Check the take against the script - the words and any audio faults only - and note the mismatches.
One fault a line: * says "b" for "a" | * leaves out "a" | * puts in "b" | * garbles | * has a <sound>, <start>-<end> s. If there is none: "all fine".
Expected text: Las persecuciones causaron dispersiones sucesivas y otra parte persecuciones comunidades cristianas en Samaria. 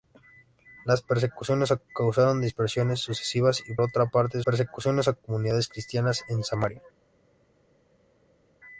all fine